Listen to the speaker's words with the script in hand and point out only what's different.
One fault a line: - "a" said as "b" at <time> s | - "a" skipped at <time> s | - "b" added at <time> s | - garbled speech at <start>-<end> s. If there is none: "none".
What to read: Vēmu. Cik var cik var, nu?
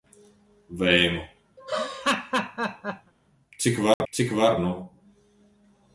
none